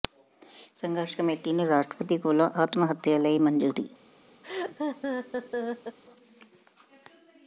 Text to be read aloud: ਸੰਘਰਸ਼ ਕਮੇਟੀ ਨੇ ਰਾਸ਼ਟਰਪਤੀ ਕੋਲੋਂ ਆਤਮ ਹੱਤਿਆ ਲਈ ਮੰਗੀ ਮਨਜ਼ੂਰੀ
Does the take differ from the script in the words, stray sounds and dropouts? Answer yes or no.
yes